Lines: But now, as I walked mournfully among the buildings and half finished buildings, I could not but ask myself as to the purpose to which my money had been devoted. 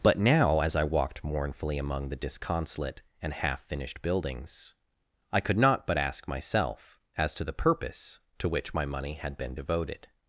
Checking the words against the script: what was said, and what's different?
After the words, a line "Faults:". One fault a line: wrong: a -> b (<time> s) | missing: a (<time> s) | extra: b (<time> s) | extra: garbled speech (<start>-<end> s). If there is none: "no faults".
But now, as I walked mournfully among the disconsolate and half finished buildings, I could not but ask myself as to the purpose to which my money had been devoted.
Faults:
wrong: buildings -> disconsolate (2.1 s)